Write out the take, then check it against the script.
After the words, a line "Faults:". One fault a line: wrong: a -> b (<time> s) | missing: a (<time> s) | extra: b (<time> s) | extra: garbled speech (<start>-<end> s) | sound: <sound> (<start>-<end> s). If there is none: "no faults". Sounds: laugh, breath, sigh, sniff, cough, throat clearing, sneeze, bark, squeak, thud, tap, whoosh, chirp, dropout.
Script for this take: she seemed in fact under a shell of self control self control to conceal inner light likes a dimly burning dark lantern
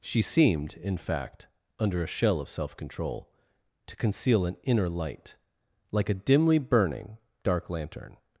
she seemed in fact under a shell of self control to conceal an inner light like a dimly burning dark lantern
Faults:
missing: self control (3.3 s)
extra: an (4.5 s)
wrong: likes -> like (5.9 s)